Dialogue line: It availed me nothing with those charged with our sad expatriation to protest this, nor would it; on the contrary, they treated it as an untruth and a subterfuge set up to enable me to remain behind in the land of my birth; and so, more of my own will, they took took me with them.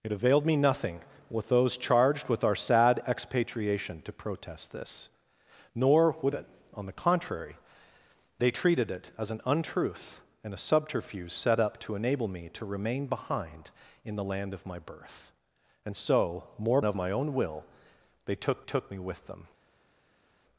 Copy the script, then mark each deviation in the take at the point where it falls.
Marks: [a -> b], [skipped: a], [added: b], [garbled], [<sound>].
It availed me nothing with those charged with our sad expatriation to protest this, nor would it; on the contrary, they treated it as an untruth and a subterfuge set up to enable me to remain behind in the land of my birth; and so, more of my own will, they took took me with them.